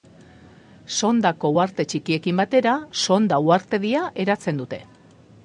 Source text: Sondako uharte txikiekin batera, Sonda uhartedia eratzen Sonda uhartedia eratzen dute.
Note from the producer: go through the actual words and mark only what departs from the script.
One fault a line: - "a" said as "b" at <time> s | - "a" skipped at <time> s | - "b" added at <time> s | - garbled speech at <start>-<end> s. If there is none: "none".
- "Sonda uhartedia eratzen" skipped at 4.6 s